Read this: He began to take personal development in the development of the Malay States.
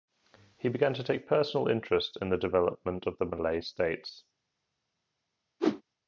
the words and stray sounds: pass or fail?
fail